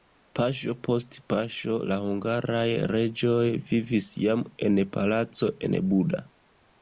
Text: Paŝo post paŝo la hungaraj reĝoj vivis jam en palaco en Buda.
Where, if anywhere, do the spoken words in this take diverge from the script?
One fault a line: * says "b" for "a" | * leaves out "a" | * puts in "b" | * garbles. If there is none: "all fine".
all fine